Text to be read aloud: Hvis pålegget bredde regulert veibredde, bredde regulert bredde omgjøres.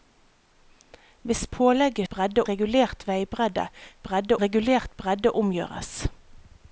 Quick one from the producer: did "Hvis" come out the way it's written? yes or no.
yes